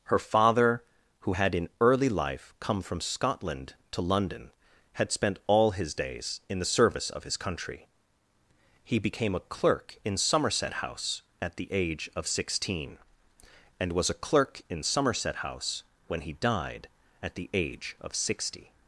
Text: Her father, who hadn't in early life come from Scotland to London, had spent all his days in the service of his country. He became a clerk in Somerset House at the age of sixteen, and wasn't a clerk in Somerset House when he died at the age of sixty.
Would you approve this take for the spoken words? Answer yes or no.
no